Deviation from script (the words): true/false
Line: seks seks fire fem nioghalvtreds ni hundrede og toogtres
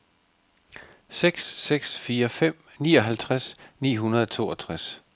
false